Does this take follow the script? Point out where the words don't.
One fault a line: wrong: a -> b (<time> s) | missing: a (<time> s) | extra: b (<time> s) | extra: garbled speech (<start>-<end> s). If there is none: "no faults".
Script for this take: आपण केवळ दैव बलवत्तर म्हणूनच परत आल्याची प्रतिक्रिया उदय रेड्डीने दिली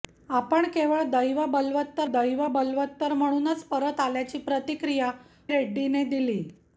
extra: दैव बलवत्तर (2.1 s)
missing: उदय (5.1 s)